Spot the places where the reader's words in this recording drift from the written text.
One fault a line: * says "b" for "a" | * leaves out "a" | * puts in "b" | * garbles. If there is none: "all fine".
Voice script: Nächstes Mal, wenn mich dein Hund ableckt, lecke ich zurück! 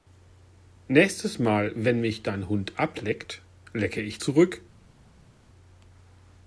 all fine